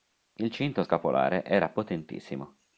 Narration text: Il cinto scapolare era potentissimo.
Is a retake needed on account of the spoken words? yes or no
no